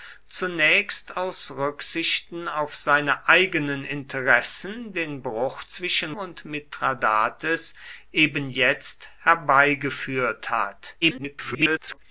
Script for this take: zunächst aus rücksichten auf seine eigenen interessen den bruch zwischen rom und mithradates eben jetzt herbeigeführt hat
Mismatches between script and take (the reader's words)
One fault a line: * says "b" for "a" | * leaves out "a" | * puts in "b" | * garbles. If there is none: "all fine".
* leaves out "rom"
* garbles